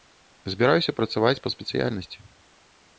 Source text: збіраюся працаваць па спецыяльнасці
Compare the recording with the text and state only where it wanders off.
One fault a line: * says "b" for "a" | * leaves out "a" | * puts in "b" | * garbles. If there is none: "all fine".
all fine